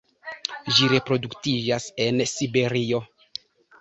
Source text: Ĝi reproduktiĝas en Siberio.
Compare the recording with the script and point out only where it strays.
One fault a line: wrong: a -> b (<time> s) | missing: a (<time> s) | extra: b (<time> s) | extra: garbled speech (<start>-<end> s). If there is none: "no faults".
no faults